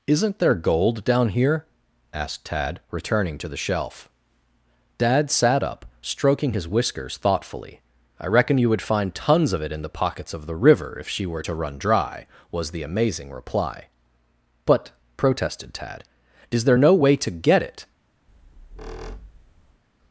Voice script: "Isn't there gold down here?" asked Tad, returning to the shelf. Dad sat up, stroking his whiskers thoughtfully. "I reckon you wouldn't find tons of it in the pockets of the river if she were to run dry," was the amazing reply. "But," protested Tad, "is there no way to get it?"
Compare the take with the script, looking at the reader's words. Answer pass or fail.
fail